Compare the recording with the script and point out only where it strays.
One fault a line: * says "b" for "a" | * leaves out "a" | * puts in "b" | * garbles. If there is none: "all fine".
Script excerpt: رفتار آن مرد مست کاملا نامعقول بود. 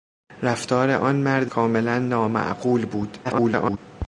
* leaves out "مست"
* garbles